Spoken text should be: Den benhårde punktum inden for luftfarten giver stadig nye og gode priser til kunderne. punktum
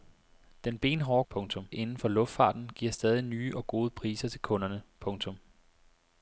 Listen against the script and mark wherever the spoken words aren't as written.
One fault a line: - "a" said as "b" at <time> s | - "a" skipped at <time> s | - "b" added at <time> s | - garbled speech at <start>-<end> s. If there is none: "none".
none